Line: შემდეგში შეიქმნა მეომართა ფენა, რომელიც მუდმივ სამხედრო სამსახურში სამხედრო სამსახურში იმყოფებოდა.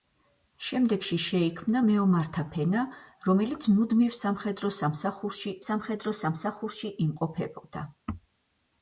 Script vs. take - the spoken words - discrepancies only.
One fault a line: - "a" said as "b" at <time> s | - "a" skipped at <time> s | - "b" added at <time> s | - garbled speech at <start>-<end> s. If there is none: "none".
none